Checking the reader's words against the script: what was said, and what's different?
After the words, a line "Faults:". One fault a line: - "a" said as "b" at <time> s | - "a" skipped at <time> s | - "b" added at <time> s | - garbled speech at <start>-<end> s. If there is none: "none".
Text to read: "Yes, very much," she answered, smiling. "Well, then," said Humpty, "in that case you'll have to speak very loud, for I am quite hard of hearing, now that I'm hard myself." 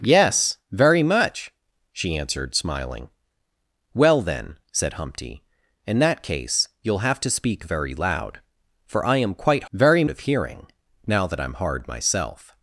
"Yes, very much," she answered, smiling. "Well, then," said Humpty, "in that case you'll have to speak very loud, for I am quite very of hearing, now that I'm hard myself."
Faults:
- "hard" said as "very" at 9.7 s